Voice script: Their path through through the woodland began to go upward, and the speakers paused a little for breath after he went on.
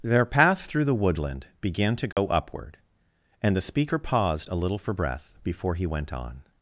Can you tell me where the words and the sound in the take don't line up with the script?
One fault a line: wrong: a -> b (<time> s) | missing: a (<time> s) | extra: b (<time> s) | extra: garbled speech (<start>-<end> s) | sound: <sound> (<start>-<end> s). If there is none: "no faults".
missing: through (0.8 s)
sound: dropout (2.1-2.2 s)
wrong: speakers -> speaker (3.6 s)
wrong: after -> before (5.4 s)